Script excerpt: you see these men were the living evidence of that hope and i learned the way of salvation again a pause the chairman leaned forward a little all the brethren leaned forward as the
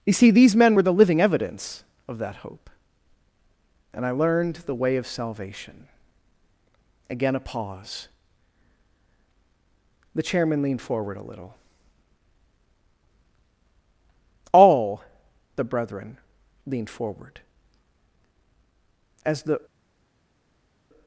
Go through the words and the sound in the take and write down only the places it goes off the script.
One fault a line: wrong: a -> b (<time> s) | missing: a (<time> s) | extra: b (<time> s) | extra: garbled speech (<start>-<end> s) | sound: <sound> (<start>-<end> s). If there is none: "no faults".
no faults